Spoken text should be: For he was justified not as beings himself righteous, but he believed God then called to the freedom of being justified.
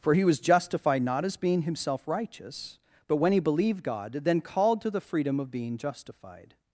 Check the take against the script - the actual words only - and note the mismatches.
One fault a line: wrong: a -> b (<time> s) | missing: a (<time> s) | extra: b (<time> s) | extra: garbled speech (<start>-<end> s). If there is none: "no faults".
wrong: beings -> being (1.4 s)
extra: when (3.2 s)